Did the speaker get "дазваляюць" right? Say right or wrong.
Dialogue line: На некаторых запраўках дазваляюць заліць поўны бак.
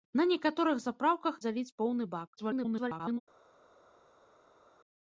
wrong